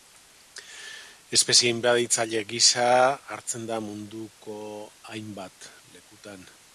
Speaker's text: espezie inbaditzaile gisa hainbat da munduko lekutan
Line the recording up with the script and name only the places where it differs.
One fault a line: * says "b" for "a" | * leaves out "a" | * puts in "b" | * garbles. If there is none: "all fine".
* says "hartzen" for "hainbat"
* puts in "hainbat"